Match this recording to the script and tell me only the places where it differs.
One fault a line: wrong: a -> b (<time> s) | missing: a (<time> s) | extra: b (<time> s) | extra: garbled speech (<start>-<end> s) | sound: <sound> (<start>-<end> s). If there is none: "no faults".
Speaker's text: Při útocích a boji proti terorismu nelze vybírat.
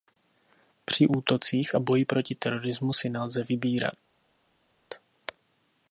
extra: si (2.9 s)